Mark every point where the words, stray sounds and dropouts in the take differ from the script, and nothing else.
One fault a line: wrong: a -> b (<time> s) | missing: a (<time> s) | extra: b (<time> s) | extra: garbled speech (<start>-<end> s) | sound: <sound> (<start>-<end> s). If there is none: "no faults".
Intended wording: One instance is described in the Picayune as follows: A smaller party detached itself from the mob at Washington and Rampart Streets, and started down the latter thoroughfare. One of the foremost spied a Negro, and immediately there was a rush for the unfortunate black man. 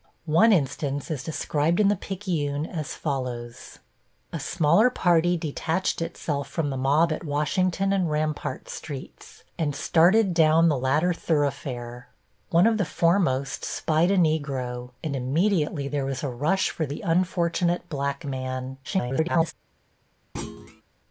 extra: garbled speech (18.8-19.5 s)
sound: thud (20.4-20.8 s)